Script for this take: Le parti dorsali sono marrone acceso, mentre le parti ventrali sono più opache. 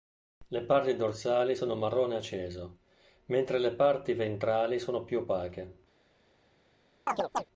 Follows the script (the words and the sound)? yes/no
no